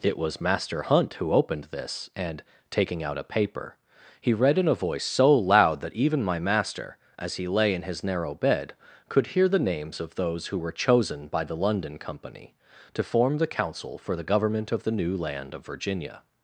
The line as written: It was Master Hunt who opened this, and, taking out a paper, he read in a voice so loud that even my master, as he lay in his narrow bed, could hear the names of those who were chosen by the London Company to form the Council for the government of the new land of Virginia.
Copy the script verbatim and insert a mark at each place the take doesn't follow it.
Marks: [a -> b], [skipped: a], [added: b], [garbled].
It was Master Hunt who opened this, and, taking out a paper, he read in a voice so loud that even my master, as he lay in his narrow bed, could hear the names of those who were chosen by the London Company to form the Council for the government of the new land of Virginia.